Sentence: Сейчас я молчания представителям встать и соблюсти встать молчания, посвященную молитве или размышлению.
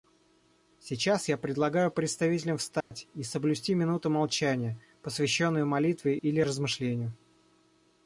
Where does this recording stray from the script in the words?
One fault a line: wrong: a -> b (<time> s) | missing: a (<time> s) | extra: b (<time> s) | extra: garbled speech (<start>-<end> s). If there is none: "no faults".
wrong: молчания -> предлагаю (1.4 s)
wrong: встать -> минуту (3.8 s)